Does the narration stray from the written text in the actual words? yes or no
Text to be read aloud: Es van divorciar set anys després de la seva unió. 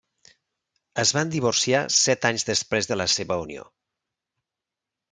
no